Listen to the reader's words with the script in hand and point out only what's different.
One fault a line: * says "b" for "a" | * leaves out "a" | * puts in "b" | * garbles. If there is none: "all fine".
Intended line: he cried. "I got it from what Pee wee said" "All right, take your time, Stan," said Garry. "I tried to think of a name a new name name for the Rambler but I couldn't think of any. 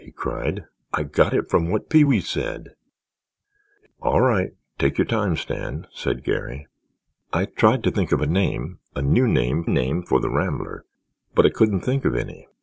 all fine